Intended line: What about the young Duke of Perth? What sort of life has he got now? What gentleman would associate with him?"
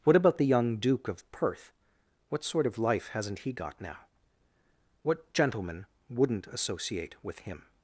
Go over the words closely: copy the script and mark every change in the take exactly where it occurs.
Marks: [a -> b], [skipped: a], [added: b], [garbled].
What about the young Duke of Perth? What sort of life [has -> hasn't] he got now? What gentleman [would -> wouldn't] associate with him?"